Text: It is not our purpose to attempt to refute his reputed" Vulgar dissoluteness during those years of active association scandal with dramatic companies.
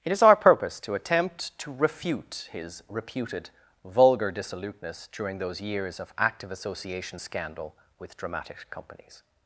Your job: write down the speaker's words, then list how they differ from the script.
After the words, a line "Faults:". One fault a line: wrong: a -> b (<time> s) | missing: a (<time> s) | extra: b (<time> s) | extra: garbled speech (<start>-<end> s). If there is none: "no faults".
It is our purpose to attempt to refute his reputed" Vulgar dissoluteness during those years of active association scandal with dramatic companies.
Faults:
missing: not (0.2 s)